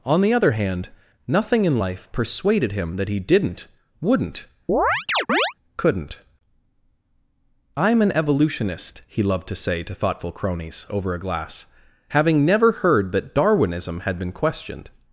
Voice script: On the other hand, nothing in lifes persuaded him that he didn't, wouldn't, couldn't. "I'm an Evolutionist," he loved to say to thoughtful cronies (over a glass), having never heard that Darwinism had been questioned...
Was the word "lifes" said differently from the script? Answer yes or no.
yes